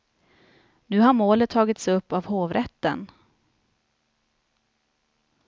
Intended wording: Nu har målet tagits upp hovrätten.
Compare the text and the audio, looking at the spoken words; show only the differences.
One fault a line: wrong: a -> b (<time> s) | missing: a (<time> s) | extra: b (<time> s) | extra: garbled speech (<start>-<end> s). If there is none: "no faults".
extra: av (2.1 s)